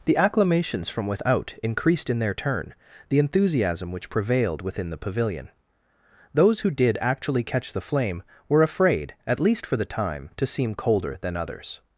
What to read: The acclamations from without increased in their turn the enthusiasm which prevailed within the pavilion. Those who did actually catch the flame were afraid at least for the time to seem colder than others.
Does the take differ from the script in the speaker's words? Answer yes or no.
no